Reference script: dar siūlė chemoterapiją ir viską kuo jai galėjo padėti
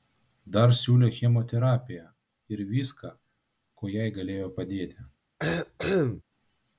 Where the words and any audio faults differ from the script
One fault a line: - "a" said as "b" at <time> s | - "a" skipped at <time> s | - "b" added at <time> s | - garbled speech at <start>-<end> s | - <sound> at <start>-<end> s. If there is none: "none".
- cough at 5.4-6.2 s